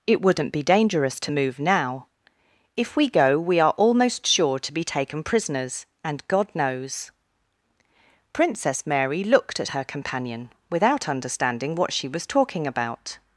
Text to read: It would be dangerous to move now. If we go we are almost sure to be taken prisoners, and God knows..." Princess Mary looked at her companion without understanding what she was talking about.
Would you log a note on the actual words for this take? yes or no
yes